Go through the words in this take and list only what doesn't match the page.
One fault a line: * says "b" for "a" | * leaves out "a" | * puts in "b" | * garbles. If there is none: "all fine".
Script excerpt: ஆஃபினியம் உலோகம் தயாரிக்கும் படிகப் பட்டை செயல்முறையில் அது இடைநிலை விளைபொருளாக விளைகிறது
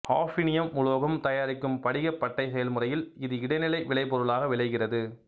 * says "இது" for "அது"